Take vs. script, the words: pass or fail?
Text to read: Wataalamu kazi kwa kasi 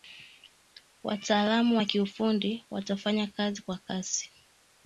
fail